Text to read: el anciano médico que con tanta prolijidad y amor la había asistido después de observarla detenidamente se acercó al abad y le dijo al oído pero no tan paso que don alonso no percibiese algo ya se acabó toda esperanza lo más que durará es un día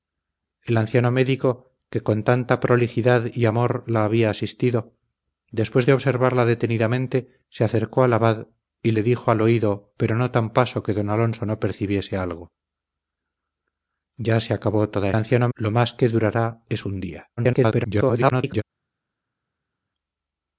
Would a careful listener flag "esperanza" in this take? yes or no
yes